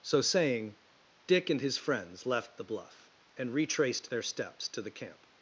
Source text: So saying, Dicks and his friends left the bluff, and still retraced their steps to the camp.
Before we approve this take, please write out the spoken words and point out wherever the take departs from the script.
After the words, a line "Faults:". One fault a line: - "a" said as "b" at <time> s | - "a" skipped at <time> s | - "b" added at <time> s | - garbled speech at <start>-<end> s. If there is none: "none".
So saying, Dick and his friends left the bluff, and retraced their steps to the camp.
Faults:
- "Dicks" said as "Dick" at 1.3 s
- "still" skipped at 3.5 s